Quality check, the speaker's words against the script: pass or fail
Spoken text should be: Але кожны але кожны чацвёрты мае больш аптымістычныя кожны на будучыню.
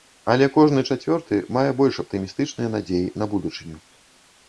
fail